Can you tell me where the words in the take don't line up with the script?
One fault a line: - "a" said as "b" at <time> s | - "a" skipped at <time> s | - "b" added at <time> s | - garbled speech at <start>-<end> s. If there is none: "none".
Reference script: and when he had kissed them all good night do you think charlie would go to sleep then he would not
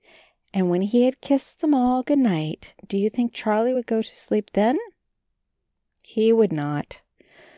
none